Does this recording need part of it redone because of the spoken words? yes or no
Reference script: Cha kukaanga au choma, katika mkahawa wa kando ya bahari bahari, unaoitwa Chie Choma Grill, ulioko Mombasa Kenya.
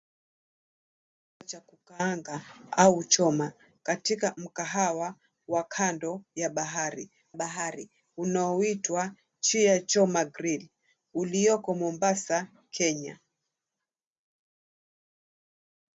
no